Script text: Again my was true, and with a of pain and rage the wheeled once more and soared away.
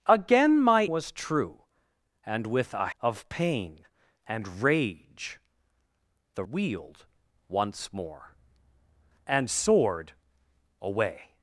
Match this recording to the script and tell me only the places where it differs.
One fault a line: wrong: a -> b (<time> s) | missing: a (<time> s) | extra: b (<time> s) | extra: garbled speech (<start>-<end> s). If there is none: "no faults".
no faults